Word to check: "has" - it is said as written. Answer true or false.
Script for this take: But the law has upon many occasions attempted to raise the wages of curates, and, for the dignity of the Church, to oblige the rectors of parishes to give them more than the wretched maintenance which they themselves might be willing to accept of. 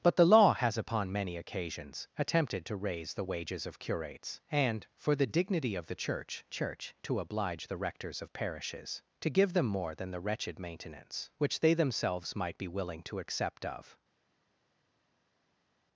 true